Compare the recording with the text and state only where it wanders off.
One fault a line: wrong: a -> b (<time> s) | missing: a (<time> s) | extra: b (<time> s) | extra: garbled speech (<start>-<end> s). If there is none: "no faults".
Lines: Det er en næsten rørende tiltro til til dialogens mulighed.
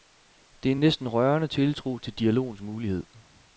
missing: til (2.1 s)